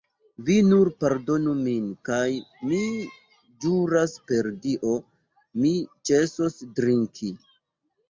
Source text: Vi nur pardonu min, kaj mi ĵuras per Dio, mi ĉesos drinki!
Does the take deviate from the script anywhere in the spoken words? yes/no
no